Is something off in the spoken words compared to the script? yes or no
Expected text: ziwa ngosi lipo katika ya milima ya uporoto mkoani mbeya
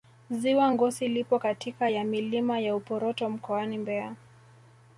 no